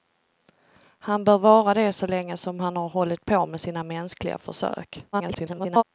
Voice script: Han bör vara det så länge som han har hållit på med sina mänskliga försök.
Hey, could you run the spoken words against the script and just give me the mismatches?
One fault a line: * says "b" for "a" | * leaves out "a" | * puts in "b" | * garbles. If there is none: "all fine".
* garbles